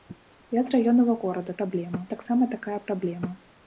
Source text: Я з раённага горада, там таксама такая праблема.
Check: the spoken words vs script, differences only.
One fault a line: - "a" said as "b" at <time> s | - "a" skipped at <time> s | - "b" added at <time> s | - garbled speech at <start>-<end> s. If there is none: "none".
- "там" said as "праблема" at 1.6 s